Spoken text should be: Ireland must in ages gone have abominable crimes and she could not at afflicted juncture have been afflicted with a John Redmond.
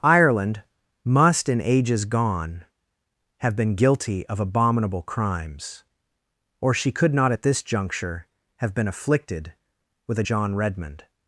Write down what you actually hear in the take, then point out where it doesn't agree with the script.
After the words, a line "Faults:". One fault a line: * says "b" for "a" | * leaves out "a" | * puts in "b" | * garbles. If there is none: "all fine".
Ireland must in ages gone have been guilty of abominable crimes or she could not at this juncture have been afflicted with a John Redmond.
Faults:
* puts in "been guilty of"
* says "or" for "and"
* says "this" for "afflicted"